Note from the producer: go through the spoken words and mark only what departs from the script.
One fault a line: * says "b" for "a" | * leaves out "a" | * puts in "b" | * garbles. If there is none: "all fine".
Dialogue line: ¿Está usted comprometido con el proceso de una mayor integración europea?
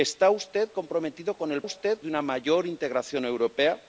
* says "usted" for "proceso"